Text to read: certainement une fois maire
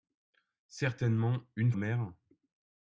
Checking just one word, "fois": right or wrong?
wrong